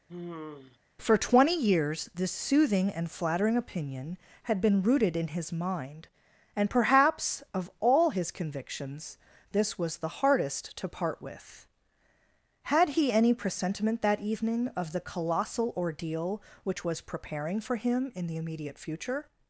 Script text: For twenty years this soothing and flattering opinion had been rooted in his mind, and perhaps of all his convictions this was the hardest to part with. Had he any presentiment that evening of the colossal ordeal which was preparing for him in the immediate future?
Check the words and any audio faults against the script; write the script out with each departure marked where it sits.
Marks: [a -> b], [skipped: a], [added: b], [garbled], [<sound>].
[sigh] For twenty years this soothing and flattering opinion had been rooted in his mind, and perhaps of all his convictions this was the hardest to part with. Had he any presentiment that evening of the colossal ordeal which was preparing for him in the immediate future?